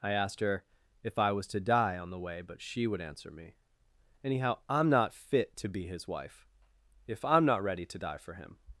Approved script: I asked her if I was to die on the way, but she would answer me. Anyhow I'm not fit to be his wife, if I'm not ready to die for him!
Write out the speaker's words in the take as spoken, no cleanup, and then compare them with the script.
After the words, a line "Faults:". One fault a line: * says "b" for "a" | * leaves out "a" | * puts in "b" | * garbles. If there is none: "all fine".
I asked her if I was to die on the way, but she would answer me. Anyhow I'm not fit to be his wife, if I'm not ready to die for him!
Faults:
all fine